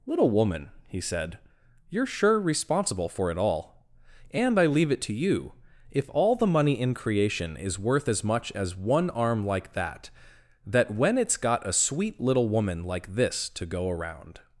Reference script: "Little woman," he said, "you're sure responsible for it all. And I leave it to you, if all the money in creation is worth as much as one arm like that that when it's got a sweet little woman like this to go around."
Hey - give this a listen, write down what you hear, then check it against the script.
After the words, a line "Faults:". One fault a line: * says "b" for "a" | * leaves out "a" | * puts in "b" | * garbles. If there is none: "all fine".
"Little woman," he said, "you're sure responsible for it all. And I leave it to you, if all the money in creation is worth as much as one arm like that that when it's got a sweet little woman like this to go around."
Faults:
all fine